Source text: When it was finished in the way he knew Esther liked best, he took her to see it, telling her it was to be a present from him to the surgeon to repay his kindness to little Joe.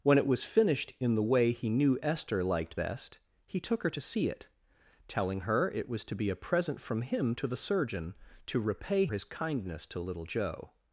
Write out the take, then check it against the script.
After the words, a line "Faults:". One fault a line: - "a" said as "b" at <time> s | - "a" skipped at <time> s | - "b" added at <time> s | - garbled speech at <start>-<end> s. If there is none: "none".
When it was finished in the way he knew Esther liked best, he took her to see it, telling her it was to be a present from him to the surgeon to repay his kindness to little Joe.
Faults:
none